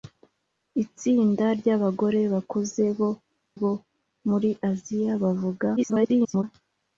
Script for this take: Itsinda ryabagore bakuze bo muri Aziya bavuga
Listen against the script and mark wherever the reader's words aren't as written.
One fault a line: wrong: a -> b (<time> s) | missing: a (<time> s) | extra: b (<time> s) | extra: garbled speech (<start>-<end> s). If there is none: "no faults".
extra: bo (3.6 s)
extra: garbled speech (5.8-6.4 s)